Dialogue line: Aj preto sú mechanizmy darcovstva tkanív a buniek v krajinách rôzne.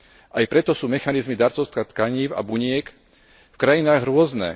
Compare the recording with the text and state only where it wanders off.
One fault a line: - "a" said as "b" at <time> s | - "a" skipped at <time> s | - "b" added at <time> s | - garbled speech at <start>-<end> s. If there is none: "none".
none